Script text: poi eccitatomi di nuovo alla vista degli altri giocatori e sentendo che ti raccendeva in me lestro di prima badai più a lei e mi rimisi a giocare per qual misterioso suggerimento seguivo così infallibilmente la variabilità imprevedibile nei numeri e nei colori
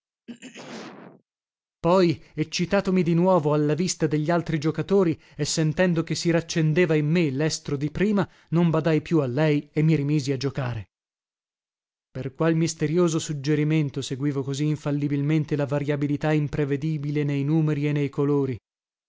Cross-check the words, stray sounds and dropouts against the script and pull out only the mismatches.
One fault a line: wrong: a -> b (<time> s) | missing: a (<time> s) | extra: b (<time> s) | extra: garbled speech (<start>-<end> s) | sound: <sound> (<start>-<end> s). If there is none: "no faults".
sound: throat clearing (0.3-1.2 s)
wrong: ti -> si (6.1 s)
extra: non (8.5 s)